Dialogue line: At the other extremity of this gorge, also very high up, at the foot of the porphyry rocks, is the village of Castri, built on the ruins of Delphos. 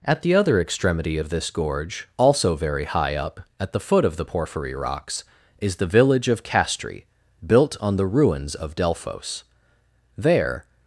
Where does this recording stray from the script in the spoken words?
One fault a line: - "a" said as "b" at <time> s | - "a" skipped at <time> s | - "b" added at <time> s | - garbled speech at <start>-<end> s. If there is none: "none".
- "There" added at 10.2 s